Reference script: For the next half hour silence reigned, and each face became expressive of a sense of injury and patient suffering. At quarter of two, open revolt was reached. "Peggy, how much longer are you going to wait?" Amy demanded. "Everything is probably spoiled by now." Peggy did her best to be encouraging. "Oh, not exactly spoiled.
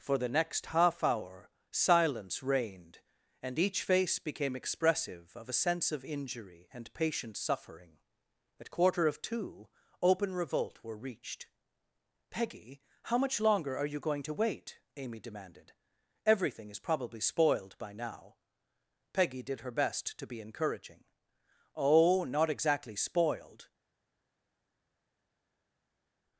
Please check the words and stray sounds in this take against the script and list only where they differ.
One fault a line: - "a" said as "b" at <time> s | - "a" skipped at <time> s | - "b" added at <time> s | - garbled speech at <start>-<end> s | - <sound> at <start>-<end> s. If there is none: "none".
- "was" said as "were" at 10.8 s